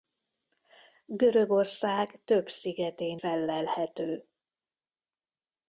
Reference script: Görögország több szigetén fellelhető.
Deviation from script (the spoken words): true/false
false